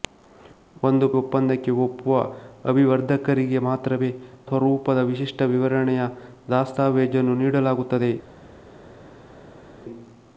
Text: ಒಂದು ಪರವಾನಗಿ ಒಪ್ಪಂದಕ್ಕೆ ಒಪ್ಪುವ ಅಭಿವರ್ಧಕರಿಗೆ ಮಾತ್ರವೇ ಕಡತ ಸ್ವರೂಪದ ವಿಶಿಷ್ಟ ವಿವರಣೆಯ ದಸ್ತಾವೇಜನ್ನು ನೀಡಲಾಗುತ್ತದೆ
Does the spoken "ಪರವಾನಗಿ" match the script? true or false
false